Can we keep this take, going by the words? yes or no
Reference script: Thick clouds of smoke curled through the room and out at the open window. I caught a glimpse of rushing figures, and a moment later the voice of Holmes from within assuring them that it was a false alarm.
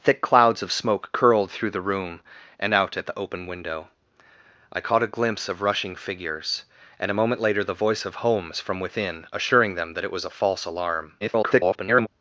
no